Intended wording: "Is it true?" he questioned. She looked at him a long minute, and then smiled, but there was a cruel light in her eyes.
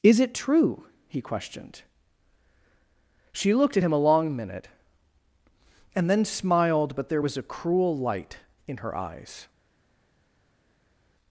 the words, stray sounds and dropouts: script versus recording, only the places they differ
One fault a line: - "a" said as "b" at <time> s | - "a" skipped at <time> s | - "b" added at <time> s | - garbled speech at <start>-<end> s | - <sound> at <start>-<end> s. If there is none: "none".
none